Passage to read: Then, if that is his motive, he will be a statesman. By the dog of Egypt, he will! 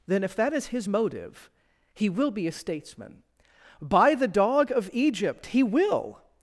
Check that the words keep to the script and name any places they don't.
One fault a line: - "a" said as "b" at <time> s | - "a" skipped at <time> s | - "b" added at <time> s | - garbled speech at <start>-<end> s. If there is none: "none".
none